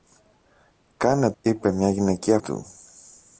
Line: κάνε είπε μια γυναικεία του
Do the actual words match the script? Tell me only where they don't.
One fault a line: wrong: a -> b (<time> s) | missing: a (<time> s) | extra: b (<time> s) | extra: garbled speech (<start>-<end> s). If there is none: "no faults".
no faults